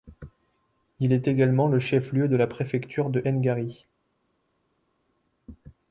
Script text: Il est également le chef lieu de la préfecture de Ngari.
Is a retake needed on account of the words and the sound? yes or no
no